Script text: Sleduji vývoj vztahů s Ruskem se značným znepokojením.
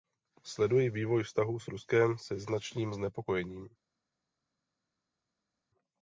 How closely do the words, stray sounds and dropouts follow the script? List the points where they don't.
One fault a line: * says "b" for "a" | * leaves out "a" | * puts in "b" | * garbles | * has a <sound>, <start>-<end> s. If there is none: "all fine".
all fine